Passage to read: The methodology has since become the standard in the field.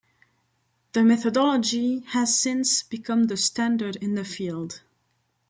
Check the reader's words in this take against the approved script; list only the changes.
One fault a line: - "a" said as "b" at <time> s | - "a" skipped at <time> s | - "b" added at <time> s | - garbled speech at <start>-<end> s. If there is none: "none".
none